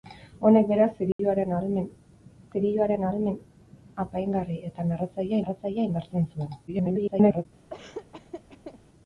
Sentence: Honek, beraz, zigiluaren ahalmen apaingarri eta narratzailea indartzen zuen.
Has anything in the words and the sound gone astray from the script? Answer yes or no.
yes